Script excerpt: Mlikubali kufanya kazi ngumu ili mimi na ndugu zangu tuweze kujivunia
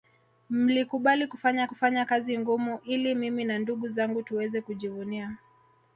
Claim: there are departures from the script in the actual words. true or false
true